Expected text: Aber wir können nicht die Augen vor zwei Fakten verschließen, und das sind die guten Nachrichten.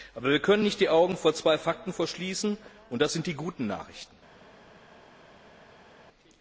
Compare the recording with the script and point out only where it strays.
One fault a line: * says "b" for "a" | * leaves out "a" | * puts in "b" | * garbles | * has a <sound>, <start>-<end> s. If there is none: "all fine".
all fine